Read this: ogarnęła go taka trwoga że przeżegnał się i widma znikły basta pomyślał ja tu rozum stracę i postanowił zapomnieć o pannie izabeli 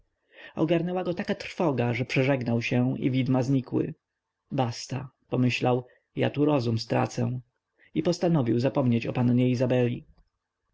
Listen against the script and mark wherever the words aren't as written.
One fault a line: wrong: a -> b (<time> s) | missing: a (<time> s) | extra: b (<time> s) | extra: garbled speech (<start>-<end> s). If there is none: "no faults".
no faults